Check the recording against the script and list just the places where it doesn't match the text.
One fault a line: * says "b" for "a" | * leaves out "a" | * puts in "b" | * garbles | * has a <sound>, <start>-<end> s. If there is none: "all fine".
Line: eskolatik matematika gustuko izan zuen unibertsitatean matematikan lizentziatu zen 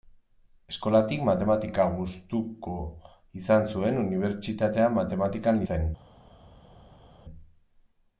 * leaves out "lizentziatu"